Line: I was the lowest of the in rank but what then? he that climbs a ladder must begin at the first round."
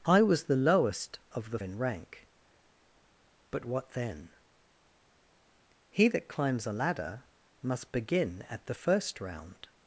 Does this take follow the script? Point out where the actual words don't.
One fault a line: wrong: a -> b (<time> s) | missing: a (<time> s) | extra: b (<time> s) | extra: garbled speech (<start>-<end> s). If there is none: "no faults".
no faults